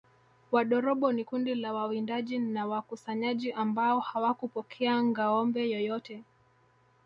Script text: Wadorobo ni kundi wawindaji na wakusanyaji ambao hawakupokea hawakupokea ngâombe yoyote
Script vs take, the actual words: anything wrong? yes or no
yes